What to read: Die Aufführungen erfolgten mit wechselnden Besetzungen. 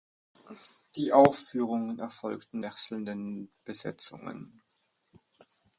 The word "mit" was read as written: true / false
false